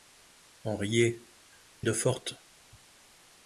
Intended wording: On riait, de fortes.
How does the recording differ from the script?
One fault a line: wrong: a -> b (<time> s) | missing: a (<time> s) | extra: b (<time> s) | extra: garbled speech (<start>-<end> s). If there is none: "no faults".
no faults